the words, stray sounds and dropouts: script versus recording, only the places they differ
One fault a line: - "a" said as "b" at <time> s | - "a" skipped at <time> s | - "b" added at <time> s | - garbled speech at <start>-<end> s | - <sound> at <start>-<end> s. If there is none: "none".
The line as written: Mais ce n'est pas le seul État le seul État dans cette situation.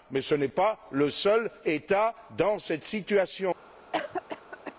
- "le seul État" skipped at 2.1 s
- cough at 3.9-4.7 s